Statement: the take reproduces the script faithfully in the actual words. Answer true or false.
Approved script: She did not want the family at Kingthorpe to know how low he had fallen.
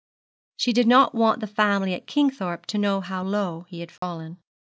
true